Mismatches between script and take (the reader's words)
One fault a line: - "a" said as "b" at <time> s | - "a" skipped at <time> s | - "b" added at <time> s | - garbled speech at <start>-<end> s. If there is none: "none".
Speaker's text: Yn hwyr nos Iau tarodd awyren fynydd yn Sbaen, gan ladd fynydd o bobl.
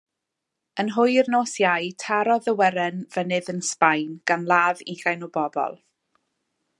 - "fynydd" said as "ugain" at 4.9 s